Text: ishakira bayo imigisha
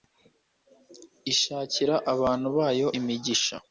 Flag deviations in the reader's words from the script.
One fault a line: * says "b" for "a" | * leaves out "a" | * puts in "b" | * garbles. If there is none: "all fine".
* puts in "abantu"